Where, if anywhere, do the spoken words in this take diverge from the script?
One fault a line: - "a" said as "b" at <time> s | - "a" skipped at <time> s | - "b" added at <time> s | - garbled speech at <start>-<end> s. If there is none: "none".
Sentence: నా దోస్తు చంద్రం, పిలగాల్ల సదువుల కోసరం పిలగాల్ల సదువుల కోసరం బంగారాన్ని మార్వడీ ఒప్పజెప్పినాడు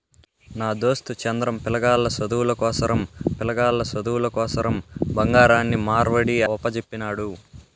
none